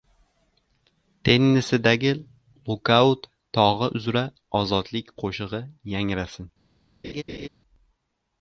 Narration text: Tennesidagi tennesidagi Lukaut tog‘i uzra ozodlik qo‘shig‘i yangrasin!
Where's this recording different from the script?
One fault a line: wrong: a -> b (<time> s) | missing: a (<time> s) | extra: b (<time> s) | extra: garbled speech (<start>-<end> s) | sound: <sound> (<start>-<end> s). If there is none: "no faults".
missing: tennesidagi (2.1 s)
sound: laugh (7.0-7.5 s)